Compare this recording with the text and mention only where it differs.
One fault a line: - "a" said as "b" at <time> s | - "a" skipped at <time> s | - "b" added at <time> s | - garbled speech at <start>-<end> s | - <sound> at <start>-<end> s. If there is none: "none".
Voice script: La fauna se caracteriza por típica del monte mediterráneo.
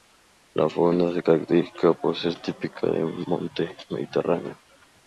- "ser" added at 2.1 s